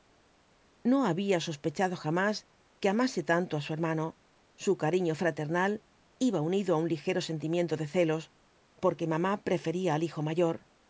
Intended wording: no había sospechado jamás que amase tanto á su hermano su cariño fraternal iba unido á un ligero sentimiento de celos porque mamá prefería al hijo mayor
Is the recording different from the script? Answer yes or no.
no